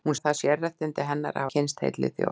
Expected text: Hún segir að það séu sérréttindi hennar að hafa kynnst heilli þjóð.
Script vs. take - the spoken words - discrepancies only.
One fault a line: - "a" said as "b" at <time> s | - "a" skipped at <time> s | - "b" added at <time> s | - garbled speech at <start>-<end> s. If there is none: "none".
- "segir" skipped at 0.1 s
- "séu" skipped at 0.4 s
- "hafa" skipped at 1.5 s